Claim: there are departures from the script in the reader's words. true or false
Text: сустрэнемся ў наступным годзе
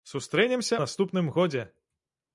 true